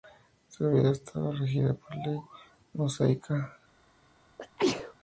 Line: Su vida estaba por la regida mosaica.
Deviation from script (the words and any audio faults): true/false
true